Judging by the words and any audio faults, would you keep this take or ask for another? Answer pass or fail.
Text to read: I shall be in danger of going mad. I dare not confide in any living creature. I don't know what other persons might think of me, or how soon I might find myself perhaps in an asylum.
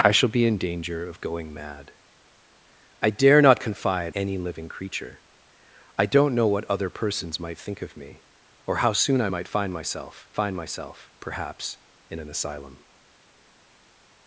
fail